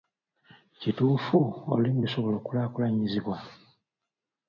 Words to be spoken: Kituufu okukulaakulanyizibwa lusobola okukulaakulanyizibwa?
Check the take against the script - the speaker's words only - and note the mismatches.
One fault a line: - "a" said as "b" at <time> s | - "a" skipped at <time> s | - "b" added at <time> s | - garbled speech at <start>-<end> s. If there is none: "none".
- "okukulaakulanyizibwa" said as "olulimi" at 1.7 s